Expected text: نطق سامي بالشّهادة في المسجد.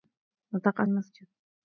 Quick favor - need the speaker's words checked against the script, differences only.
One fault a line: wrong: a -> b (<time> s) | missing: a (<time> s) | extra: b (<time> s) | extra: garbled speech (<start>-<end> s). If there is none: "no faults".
missing: سامي بالشّهادة في (0.8 s)